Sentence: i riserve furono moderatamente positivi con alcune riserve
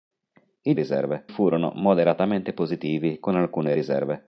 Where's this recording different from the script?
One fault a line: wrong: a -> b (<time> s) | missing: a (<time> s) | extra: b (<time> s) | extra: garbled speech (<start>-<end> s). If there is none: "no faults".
no faults